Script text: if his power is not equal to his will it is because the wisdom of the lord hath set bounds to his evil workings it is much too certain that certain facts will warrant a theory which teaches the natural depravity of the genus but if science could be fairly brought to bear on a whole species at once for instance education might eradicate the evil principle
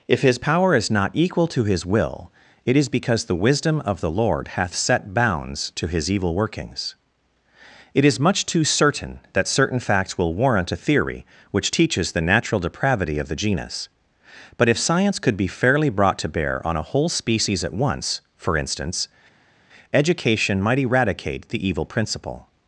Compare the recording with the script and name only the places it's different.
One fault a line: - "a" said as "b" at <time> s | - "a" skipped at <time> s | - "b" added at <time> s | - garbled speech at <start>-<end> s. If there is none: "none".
none